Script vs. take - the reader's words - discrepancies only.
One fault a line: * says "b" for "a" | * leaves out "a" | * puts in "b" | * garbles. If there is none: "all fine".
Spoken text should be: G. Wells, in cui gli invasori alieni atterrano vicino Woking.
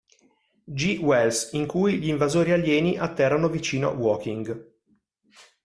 all fine